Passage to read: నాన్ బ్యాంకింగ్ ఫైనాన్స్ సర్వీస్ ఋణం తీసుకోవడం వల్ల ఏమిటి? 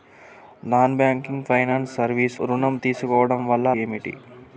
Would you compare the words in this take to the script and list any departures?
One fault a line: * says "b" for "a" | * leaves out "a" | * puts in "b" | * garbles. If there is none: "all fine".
all fine